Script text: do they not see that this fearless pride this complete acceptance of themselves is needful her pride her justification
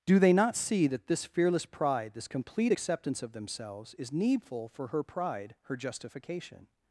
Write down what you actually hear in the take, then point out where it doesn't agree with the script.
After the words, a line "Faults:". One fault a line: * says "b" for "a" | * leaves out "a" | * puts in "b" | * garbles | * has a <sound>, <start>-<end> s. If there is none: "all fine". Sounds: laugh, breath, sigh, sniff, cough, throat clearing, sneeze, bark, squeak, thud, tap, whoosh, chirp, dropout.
do they not see that this fearless pride this complete acceptance of themselves is needful for her pride her justification
Faults:
* puts in "for"